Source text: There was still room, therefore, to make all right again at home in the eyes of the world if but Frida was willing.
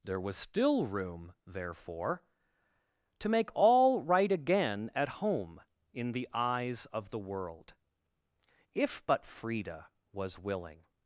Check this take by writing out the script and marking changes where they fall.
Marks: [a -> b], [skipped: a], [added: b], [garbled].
There was still room, therefore, to make all right again at home in the eyes of the world if but Frida was willing.